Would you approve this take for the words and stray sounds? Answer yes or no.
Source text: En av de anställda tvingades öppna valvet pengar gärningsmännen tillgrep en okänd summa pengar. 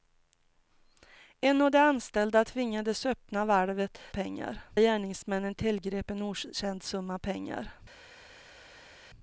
yes